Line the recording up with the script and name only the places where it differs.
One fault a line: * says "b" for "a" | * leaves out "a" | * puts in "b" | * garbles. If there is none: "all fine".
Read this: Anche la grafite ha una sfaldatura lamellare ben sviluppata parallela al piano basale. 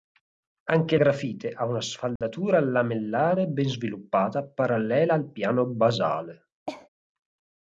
* leaves out "la"